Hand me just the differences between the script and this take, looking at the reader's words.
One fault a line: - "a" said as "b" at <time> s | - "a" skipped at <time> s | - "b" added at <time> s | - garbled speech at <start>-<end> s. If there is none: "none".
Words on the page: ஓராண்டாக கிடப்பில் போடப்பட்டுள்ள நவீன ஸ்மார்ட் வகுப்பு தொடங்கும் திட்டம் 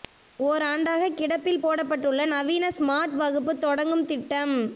none